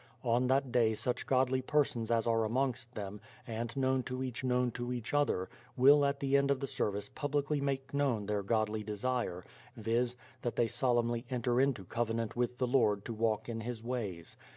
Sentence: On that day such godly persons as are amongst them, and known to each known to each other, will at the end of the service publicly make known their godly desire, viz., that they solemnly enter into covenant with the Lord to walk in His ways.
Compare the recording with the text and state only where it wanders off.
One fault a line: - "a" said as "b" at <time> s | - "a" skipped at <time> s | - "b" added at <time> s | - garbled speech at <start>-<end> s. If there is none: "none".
none